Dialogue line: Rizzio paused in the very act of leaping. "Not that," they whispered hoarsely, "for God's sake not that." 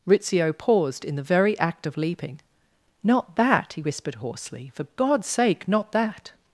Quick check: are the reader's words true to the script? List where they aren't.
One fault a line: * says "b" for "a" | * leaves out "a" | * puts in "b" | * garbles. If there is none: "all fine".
* says "he" for "they"